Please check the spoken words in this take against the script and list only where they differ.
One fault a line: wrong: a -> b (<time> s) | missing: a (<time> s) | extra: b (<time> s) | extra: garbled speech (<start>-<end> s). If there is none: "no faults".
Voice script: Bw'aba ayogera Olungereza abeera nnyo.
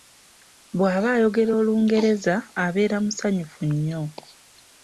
extra: musanyufu (3.0 s)